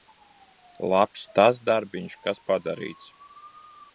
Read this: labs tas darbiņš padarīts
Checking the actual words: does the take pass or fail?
fail